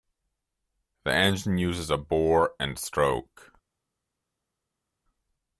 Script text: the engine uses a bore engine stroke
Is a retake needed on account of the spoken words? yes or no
yes